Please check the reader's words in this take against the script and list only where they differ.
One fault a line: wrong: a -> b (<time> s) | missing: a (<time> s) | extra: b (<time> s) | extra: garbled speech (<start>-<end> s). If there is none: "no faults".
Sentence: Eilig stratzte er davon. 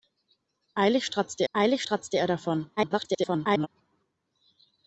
extra: eilig stratzte (1.5 s)
extra: garbled speech (2.8-3.7 s)